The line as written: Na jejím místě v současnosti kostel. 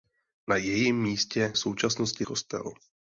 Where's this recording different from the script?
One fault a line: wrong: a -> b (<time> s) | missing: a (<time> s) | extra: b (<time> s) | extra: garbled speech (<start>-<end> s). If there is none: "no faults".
no faults